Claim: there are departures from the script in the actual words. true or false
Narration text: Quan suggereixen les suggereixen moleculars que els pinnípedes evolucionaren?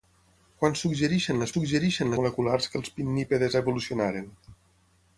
false